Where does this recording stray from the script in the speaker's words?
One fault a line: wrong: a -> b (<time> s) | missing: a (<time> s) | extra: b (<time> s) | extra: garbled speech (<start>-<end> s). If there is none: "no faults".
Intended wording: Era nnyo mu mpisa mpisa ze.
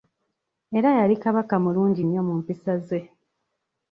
extra: yali Kabaka mulungi (1.0 s)
missing: mpisa (2.7 s)